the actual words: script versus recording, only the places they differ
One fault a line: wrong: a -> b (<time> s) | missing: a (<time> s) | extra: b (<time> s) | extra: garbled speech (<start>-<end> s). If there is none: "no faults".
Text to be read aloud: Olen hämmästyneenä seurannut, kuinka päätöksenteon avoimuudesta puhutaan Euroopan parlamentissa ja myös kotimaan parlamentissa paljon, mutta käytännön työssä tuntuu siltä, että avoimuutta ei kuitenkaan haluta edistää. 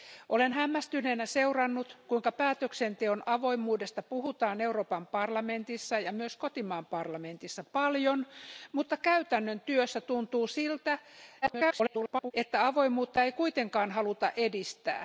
extra: garbled speech (11.4-12.3 s)